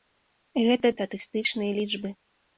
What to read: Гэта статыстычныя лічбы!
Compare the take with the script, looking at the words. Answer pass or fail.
pass